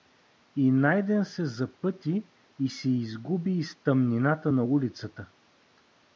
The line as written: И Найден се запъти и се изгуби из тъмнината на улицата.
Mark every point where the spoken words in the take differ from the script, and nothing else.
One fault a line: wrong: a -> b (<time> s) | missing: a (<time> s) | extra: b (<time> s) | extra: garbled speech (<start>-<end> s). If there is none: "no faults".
no faults